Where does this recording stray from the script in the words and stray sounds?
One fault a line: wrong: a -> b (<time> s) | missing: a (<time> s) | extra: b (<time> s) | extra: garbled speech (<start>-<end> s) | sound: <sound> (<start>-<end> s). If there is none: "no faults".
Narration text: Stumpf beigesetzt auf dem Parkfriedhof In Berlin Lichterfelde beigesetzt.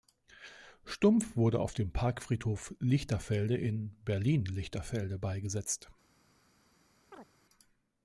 wrong: beigesetzt -> wurde (1.4 s)
extra: Lichterfelde (2.8 s)
sound: chirp (7.1-7.3 s)